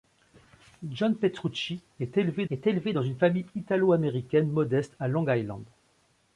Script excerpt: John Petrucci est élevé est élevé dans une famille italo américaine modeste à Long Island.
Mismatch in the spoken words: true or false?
false